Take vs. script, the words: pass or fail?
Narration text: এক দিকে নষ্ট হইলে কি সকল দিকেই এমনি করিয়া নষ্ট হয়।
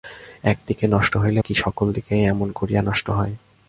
pass